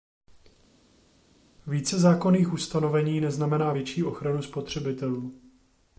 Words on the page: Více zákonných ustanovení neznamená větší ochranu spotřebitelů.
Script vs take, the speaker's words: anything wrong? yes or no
no